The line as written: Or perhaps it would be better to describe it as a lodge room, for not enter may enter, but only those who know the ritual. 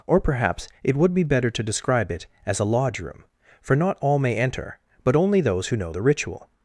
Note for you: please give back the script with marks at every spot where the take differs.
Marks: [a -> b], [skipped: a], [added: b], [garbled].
Or perhaps it would be better to describe it as a lodge room, for not [enter -> all] may enter, but only those who know the ritual.